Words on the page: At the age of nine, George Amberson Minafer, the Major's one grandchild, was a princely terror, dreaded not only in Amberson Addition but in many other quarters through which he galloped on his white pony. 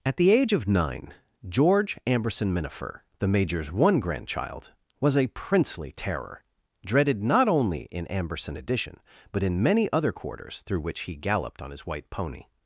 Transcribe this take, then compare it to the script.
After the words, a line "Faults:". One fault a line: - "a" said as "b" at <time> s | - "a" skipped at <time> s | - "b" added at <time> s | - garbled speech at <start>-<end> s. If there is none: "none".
At the age of nine, George Amberson Minafer, the Major's one grandchild, was a princely terror, dreaded not only in Amberson Addition but in many other quarters through which he galloped on his white pony.
Faults:
none